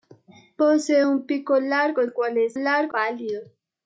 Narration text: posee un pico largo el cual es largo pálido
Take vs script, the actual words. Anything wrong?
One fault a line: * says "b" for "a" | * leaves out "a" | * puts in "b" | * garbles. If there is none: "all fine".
all fine